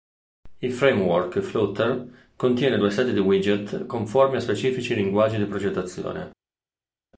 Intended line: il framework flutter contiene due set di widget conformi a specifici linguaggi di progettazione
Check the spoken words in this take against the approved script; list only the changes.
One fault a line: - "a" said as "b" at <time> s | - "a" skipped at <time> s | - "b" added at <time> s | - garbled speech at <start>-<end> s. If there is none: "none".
none